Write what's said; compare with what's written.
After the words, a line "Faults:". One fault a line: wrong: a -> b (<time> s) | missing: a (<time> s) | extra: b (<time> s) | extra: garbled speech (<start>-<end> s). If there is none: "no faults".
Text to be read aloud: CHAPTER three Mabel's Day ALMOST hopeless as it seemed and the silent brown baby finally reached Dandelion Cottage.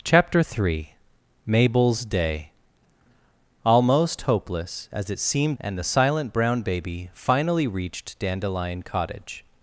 CHAPTER three Mabel's Day ALMOST hopeless as it seemed and the silent brown baby finally reached Dandelion Cottage.
Faults:
no faults